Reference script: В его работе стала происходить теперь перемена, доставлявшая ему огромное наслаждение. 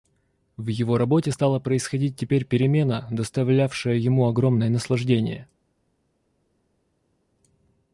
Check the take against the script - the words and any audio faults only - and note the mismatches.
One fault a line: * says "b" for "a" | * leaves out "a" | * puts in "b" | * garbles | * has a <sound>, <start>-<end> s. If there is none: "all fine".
all fine